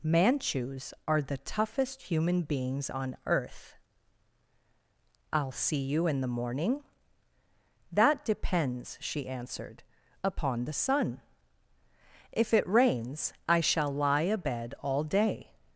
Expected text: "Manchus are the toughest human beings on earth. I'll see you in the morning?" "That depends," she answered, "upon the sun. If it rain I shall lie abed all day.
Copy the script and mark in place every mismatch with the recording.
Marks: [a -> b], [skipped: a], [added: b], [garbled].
"Manchus are the toughest human beings on earth. I'll see you in the morning?" "That depends," she answered, "upon the sun. If it [rain -> rains] I shall lie abed all day.